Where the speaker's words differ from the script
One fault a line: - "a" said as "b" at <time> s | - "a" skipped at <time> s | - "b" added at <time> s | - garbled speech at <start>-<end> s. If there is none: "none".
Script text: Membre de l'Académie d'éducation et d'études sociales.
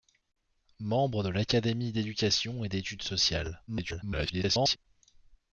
- garbled speech at 3.7-4.8 s